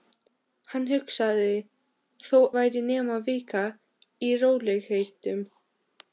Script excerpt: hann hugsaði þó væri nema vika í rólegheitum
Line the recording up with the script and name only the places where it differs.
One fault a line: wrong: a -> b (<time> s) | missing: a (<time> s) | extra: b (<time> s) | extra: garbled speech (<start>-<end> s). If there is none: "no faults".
no faults